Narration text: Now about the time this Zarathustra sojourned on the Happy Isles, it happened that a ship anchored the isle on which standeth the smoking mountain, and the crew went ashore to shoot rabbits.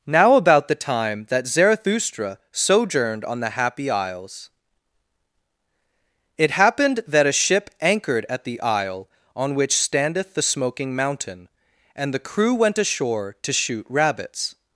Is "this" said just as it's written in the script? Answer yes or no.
no